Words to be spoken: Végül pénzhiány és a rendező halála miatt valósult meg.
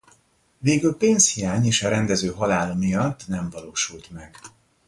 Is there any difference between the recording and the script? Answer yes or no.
yes